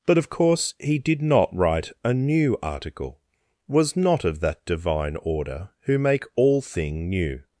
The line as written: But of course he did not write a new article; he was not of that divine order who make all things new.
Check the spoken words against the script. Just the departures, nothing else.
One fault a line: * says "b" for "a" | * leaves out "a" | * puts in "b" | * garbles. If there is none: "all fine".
* leaves out "he"
* says "thing" for "things"